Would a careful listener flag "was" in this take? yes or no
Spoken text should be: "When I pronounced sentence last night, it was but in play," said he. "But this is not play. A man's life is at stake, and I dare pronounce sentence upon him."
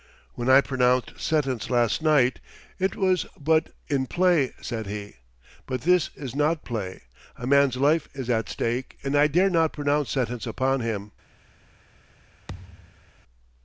no